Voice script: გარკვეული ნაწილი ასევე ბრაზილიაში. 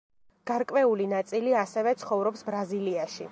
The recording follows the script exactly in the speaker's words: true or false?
false